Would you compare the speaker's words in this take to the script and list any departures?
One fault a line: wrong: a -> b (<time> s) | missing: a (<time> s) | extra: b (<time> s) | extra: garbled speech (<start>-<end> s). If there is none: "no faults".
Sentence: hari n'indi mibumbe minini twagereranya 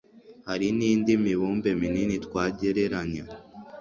no faults